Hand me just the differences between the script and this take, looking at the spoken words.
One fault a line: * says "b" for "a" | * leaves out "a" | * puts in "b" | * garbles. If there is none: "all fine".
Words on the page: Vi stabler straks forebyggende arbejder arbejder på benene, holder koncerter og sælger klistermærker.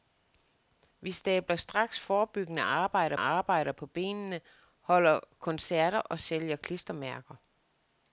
all fine